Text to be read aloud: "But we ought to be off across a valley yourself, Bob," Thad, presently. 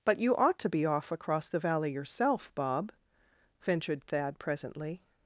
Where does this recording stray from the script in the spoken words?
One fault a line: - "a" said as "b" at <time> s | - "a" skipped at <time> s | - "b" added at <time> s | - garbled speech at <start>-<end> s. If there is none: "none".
- "we" said as "you" at 0.2 s
- "a" said as "the" at 1.5 s
- "ventured" added at 3.6 s